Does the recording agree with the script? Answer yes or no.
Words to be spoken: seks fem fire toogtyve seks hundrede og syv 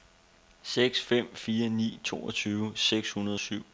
no